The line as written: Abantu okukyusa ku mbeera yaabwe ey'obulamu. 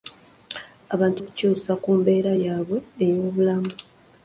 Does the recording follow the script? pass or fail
pass